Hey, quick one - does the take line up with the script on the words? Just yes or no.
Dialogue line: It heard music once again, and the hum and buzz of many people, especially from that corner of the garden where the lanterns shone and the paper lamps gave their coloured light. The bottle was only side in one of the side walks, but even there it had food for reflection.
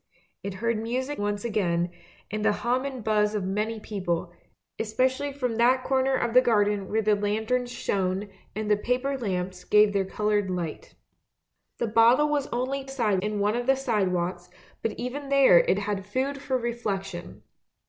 yes